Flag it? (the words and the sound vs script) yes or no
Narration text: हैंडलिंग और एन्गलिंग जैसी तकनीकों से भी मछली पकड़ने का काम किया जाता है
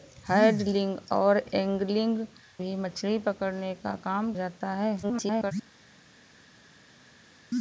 yes